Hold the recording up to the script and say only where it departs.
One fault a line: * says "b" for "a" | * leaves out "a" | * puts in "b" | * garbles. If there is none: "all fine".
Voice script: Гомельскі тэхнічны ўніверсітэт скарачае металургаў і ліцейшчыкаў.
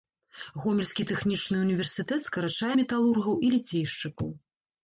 all fine